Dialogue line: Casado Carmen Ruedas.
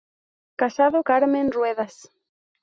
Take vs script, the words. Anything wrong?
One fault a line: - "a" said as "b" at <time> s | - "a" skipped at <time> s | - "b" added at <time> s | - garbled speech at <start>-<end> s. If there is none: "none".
none